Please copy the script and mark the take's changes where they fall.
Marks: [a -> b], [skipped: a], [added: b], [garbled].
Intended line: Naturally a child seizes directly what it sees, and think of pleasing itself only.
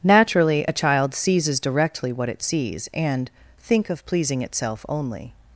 Naturally a child seizes directly what it sees, and think of pleasing itself only.